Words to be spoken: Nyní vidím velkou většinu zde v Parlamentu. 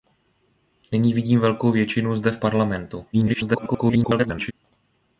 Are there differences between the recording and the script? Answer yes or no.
yes